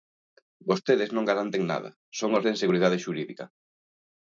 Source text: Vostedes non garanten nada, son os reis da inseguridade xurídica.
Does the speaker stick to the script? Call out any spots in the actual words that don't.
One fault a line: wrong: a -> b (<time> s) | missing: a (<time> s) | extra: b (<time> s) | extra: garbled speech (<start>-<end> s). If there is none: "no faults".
missing: reis (2.4 s)